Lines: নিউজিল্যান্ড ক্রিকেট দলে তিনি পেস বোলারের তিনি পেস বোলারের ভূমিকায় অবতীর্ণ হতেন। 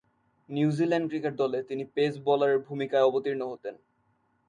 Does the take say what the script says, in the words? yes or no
no